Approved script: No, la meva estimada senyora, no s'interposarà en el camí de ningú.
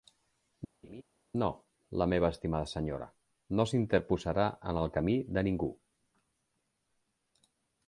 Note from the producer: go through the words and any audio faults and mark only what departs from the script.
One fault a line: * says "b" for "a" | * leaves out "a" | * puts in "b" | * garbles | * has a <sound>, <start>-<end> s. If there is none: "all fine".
* has a laugh, 0.8-1.0 s